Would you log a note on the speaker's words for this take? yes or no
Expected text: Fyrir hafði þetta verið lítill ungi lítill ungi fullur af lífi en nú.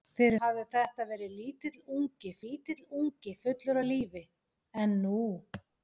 no